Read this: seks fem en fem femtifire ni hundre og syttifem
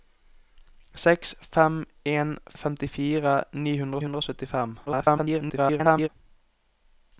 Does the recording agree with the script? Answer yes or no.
no